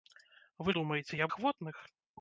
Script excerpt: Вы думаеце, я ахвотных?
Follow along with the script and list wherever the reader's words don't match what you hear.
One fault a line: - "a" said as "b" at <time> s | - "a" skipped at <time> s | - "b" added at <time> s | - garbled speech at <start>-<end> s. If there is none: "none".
none